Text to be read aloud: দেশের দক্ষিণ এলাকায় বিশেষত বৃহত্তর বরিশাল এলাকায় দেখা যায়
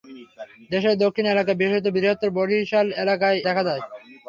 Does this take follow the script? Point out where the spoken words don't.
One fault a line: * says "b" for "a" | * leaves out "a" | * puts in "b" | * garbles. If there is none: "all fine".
all fine